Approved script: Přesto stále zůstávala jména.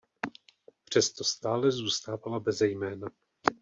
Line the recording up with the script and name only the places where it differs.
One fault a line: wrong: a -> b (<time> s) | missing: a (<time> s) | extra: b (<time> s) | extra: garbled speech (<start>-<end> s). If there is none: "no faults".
extra: beze (2.4 s)